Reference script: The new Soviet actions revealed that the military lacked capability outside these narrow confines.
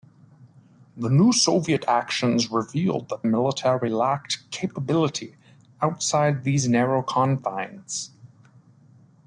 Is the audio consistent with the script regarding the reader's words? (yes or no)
yes